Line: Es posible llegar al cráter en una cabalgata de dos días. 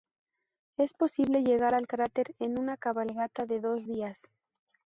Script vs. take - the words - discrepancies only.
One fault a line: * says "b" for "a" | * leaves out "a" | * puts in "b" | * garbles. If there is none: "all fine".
all fine